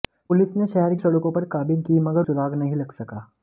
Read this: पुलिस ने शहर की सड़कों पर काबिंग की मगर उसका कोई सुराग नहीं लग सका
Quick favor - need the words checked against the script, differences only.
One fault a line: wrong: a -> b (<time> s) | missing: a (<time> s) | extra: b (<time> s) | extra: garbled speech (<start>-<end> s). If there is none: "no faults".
missing: की (0.9 s)
missing: उसका कोई (2.3 s)